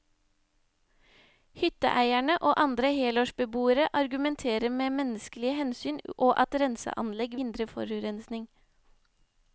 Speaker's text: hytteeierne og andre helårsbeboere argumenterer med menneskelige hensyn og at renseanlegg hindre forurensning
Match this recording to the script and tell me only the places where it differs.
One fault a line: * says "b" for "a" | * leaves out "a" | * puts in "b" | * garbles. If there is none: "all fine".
all fine